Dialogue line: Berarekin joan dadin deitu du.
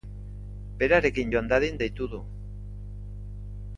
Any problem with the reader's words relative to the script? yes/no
no